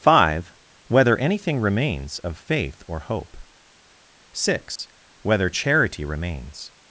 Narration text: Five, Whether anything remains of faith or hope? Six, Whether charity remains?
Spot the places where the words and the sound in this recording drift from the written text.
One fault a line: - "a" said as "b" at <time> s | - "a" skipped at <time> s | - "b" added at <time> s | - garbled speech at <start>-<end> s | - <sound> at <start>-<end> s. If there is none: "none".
- dropout at 4.8-4.8 s